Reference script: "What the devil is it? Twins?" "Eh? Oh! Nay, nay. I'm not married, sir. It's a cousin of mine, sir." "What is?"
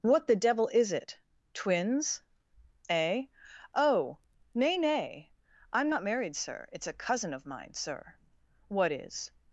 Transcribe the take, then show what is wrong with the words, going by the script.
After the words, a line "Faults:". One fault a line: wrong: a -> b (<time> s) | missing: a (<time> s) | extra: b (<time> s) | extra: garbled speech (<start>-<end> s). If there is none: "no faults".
"What the devil is it? Twins?" "Eh? Oh! Nay, nay. I'm not married, sir. It's a cousin of mine, sir." "What is?"
Faults:
no faults